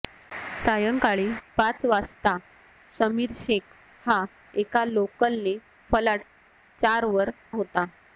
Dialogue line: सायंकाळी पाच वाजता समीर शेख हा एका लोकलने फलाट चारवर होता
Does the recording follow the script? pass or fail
pass